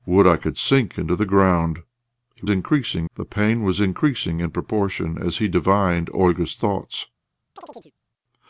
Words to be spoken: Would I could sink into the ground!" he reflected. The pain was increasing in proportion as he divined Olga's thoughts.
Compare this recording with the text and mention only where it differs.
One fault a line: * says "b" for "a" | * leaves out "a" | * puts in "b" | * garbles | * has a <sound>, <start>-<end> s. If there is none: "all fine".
* says "increasing" for "reflected"
* has a chirp, 7.6-7.9 s